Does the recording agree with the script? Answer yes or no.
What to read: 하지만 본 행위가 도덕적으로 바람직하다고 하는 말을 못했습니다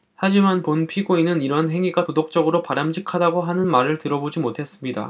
no